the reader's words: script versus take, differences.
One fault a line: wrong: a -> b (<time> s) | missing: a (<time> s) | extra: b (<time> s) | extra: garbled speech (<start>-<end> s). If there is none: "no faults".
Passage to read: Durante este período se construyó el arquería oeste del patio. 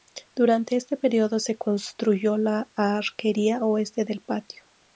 wrong: el -> la (2.4 s)